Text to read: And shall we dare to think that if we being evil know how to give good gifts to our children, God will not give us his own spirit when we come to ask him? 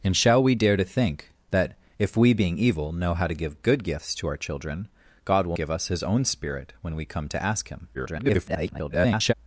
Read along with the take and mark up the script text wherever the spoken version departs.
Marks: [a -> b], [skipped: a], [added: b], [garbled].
And shall we dare to think that if we being evil know how to give good gifts to our children, God will [skipped: not] give us his own spirit when we come to ask him? [garbled]